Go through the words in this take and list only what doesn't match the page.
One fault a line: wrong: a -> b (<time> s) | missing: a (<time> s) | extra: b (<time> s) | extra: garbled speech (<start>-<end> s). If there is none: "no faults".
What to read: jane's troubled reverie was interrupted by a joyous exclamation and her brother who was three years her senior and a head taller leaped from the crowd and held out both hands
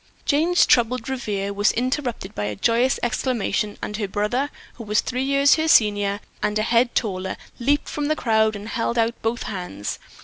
no faults